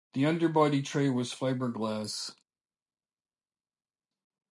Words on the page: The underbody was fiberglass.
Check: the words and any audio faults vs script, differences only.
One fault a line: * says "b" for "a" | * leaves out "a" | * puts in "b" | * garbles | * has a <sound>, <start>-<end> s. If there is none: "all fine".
* puts in "tray"